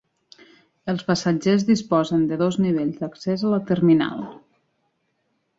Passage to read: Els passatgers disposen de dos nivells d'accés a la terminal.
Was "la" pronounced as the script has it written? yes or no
yes